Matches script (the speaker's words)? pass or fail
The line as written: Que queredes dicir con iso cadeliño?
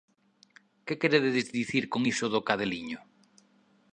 fail